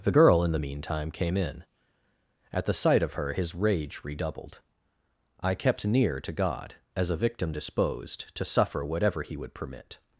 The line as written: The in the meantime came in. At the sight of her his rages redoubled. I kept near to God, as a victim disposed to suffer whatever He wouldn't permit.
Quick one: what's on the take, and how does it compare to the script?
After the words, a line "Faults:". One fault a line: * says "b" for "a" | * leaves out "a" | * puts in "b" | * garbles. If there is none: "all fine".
The girl in the meantime came in. At the sight of her his rage redoubled. I kept near to God, as a victim disposed to suffer whatever He would permit.
Faults:
* puts in "girl"
* says "rage" for "rages"
* says "would" for "wouldn't"